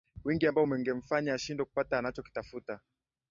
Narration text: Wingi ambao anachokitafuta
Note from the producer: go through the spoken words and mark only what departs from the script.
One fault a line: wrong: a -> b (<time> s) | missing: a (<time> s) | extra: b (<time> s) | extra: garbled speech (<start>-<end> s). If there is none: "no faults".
extra: ungemfanya ashindwe kupata (0.6 s)